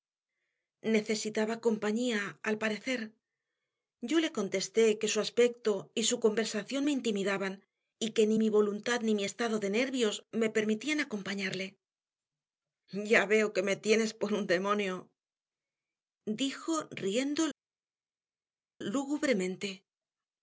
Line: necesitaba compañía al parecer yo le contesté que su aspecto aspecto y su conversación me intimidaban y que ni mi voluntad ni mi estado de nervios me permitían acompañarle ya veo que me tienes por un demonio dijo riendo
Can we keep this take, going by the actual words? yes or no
no